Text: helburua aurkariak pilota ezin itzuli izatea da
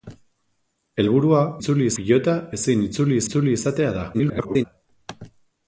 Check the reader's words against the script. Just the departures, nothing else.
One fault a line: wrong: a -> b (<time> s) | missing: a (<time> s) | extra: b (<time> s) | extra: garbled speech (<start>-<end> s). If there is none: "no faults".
wrong: aurkariak -> itzuli (1.6 s)
extra: itzuli (3.3 s)
extra: garbled speech (4.1-4.6 s)